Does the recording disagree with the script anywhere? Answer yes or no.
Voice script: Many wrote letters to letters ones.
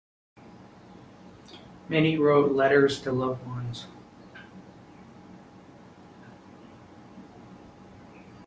yes